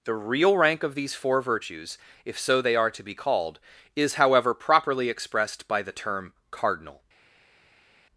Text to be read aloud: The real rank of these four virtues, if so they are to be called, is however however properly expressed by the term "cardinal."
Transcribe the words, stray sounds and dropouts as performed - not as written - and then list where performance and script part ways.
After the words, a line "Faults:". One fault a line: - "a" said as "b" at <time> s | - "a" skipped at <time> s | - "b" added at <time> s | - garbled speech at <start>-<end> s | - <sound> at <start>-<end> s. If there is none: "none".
The real rank of these four virtues, if so they are to be called, is however properly expressed by the term "cardinal."
Faults:
- "however" skipped at 4.5 s